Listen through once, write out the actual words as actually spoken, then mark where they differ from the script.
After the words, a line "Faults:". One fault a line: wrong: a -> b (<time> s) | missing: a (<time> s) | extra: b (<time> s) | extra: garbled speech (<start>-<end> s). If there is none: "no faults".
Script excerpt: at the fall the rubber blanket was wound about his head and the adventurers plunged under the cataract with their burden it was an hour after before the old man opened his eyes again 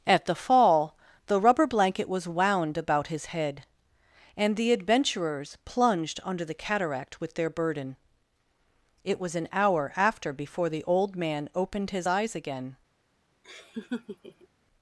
at the fall the rubber blanket was wound about his head and the adventurers plunged under the cataract with their burden it was an hour after before the old man opened his eyes again
Faults:
no faults